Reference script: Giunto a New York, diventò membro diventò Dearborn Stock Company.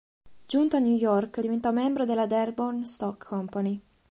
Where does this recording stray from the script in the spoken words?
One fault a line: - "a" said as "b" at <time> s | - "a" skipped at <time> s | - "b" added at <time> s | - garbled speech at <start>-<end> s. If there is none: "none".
- "diventò" said as "della" at 2.0 s